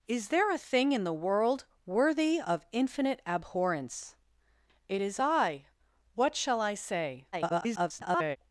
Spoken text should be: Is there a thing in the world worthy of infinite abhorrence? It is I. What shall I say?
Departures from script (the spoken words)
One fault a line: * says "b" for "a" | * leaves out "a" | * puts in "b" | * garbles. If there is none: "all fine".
* garbles